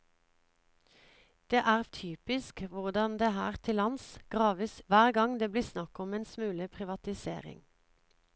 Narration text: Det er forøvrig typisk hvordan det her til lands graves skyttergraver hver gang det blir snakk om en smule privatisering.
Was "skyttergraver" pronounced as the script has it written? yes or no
no